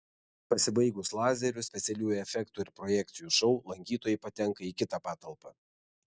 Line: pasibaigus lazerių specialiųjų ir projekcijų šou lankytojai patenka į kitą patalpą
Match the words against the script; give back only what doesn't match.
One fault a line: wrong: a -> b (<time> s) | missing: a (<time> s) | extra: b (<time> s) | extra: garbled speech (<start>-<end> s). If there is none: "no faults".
extra: efektų (2.2 s)